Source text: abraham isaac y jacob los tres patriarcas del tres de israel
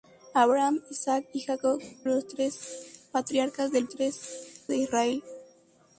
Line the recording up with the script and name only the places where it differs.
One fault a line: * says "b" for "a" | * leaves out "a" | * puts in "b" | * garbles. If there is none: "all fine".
all fine